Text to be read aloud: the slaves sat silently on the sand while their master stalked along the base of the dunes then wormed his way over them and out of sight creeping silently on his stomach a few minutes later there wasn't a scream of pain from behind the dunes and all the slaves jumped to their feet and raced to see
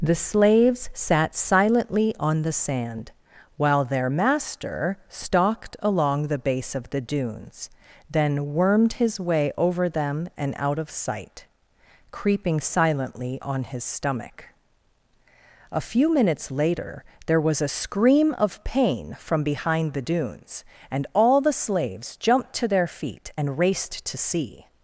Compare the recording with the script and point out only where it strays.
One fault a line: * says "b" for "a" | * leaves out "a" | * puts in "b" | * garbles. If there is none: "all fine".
* says "was" for "wasn't"